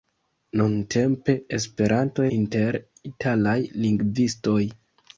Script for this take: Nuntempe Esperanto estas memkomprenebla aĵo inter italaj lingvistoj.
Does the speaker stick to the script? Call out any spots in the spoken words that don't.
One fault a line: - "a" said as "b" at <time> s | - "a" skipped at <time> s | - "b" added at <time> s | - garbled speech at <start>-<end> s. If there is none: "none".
- "estas memkomprenebla aĵo" skipped at 2.2 s